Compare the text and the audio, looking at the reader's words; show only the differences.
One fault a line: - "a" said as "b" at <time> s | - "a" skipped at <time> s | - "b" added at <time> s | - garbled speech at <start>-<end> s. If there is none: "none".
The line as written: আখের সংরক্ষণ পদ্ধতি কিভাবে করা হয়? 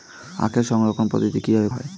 - "করা" skipped at 1.7 s